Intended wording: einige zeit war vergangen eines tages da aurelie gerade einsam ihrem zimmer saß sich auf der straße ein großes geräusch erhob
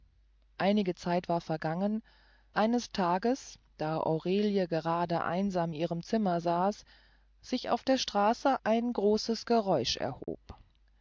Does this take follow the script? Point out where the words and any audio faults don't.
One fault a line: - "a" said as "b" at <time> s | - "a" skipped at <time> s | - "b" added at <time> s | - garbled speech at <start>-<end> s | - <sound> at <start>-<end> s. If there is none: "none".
- dropout at 10.2-10.3 s